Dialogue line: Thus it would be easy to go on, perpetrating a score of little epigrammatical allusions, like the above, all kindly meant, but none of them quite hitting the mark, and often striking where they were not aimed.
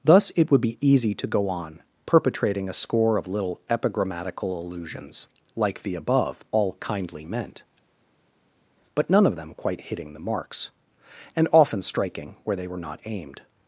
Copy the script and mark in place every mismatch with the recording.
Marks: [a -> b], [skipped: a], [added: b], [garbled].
Thus it would be easy to go on, perpetrating a score of little epigrammatical allusions, like the above, all kindly meant, but none of them quite hitting the [mark, -> marks] and often striking where they were not aimed.